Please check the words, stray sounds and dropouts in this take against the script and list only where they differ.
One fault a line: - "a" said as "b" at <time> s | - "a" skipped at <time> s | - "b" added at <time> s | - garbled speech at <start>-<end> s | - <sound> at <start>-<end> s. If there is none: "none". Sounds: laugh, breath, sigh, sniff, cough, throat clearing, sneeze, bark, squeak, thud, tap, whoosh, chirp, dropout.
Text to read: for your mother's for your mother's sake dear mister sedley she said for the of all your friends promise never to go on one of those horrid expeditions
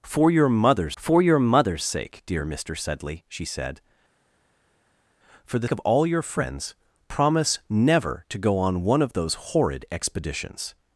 none